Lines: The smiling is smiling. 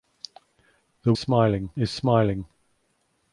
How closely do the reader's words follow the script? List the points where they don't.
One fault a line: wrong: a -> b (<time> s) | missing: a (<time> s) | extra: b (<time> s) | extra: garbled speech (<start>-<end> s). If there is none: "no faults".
no faults